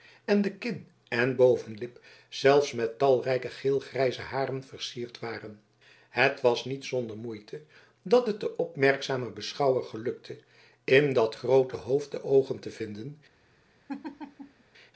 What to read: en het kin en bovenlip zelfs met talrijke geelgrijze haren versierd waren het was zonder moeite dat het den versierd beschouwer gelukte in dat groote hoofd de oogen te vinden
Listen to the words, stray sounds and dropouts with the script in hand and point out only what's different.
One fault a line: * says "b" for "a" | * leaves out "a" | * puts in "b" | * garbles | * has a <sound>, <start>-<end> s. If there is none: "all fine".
* says "de" for "het"
* puts in "niet"
* says "opmerkzamen" for "versierd"
* has a laugh, 13.9-14.6 s